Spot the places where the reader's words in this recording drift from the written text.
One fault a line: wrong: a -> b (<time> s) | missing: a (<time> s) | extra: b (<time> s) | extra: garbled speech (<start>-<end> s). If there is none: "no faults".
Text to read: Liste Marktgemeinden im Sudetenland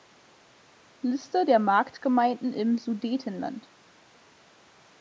extra: der (1.4 s)